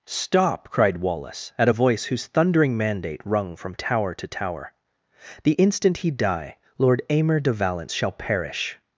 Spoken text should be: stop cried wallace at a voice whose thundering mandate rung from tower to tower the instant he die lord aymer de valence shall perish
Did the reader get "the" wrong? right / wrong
right